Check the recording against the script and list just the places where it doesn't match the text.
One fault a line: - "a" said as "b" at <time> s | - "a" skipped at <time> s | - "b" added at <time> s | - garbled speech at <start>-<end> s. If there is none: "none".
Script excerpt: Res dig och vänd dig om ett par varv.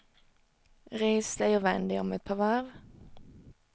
none